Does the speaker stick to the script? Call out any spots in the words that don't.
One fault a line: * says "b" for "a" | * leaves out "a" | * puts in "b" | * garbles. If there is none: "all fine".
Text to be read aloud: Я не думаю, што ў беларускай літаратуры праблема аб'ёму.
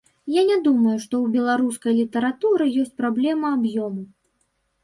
* puts in "ёсць"